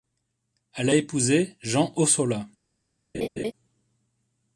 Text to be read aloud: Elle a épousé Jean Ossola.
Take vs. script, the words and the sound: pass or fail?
fail